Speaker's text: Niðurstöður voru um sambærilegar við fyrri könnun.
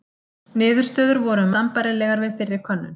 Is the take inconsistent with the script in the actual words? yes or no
no